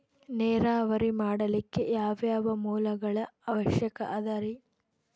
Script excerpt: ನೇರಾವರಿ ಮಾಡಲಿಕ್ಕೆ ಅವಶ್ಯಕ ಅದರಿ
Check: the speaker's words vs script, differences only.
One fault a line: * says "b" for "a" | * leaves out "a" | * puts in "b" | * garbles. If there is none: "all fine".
* puts in "ಯಾವ್ಯಾವ ಮೂಲಗಳ"